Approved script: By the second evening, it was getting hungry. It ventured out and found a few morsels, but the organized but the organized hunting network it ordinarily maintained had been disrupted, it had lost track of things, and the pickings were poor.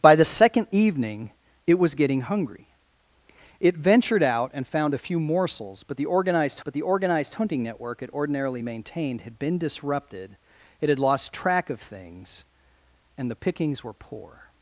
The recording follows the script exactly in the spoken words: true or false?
true